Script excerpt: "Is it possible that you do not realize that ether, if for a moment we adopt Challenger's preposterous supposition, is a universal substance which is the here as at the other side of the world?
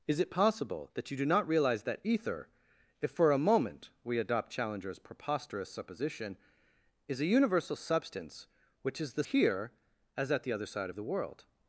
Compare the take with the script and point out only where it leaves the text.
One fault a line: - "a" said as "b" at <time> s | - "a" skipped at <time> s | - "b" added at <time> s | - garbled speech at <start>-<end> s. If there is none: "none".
none